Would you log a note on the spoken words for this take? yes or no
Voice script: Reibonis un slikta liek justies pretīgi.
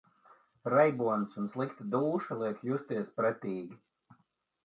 yes